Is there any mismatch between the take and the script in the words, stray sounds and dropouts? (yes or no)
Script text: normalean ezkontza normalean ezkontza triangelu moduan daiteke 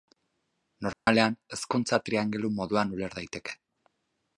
yes